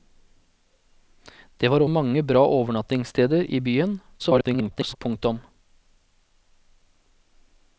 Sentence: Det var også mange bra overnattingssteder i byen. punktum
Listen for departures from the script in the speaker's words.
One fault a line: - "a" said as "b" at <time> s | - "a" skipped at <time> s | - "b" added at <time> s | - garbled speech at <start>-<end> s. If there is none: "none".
- "også" skipped at 1.8 s
- garbled speech at 4.2-5.0 s